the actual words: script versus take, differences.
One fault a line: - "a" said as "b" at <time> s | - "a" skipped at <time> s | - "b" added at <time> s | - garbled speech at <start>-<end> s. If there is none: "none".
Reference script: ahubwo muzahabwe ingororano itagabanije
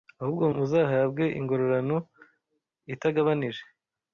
none